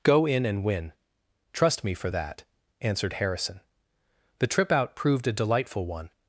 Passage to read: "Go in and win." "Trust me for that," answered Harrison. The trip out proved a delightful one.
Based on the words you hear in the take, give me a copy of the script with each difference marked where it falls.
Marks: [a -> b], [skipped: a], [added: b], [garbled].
"Go in and win." "Trust me for that," answered Harrison. The trip out proved a delightful one.